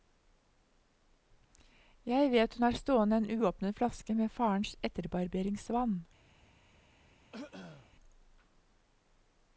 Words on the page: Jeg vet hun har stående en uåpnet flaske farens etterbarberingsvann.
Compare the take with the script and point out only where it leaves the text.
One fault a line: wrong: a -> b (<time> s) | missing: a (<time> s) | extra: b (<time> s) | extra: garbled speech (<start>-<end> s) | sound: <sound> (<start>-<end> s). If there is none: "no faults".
extra: med (4.1 s)
sound: throat clearing (7.3-7.9 s)